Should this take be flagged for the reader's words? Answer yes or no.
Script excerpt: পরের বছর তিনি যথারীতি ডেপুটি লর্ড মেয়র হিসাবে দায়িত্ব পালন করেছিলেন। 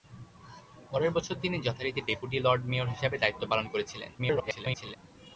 yes